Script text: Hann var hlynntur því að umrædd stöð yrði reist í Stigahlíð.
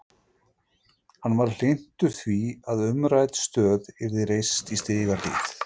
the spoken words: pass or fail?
pass